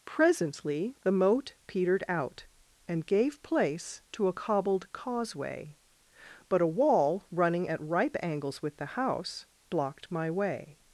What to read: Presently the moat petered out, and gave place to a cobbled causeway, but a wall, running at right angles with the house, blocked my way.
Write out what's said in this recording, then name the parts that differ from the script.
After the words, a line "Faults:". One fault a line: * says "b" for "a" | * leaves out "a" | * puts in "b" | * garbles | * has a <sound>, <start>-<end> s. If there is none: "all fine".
Presently the moat petered out, and gave place to a cobbled causeway, but a wall, running at ripe angles with the house, blocked my way.
Faults:
* says "ripe" for "right"